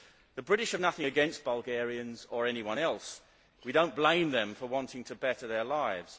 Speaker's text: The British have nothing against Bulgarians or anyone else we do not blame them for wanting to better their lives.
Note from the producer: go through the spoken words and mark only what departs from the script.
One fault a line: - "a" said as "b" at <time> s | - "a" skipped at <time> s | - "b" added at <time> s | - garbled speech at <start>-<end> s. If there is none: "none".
none